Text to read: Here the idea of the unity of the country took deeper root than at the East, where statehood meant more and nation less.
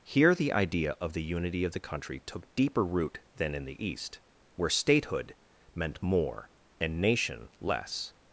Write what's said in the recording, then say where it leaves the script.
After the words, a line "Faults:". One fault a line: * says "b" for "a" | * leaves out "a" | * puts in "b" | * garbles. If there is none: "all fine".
Here the idea of the unity of the country took deeper root than in the East, where statehood meant more and nation less.
Faults:
* says "in" for "at"